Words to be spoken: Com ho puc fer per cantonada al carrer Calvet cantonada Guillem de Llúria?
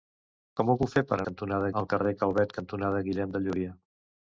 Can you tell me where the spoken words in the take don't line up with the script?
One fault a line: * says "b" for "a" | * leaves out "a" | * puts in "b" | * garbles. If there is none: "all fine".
all fine